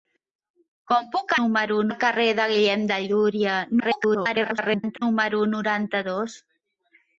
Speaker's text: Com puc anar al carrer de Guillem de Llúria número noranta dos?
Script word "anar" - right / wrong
wrong